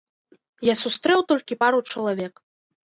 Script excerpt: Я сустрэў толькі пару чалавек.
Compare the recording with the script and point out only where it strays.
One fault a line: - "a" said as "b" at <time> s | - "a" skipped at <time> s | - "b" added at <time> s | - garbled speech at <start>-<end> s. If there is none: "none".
none